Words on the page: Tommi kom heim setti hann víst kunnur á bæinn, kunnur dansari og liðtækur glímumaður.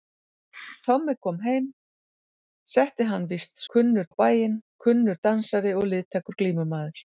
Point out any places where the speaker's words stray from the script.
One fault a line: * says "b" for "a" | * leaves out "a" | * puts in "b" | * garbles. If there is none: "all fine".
all fine